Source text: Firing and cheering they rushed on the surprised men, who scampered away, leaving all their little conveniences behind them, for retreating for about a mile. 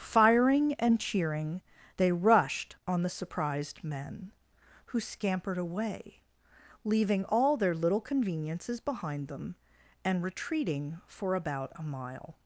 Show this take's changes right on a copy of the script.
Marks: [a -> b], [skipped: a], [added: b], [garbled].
Firing and cheering they rushed on the surprised men, who scampered away, leaving all their little conveniences behind them, [for -> and] retreating for about a mile.